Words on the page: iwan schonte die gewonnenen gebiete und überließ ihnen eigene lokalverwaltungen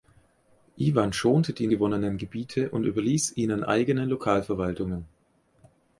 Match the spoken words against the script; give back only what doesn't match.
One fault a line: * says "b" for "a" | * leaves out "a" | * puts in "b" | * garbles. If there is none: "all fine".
all fine